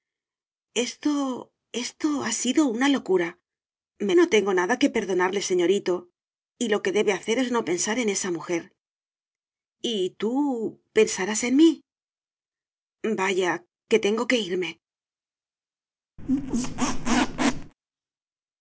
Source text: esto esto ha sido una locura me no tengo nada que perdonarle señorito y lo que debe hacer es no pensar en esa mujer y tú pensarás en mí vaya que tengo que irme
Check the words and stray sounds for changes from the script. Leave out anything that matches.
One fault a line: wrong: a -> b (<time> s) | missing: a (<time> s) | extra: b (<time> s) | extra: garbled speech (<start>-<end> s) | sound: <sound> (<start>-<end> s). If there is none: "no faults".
sound: squeak (16.2-17.7 s)